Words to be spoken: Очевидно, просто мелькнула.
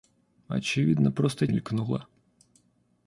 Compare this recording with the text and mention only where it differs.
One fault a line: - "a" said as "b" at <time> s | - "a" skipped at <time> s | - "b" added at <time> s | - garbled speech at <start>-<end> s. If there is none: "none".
none